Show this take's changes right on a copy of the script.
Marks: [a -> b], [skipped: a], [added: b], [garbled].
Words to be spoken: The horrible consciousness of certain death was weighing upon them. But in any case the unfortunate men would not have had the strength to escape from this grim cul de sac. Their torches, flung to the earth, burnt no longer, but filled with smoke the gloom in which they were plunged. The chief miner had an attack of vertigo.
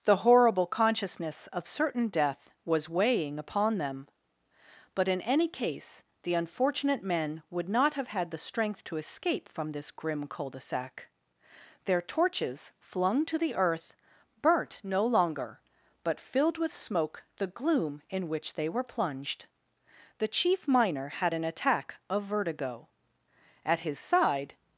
The horrible consciousness of certain death was weighing upon them. But in any case the unfortunate men would not have had the strength to escape from this grim cul de sac. Their torches, flung to the earth, burnt no longer, but filled with smoke the gloom in which they were plunged. The chief miner had an attack of vertigo. [added: At his side]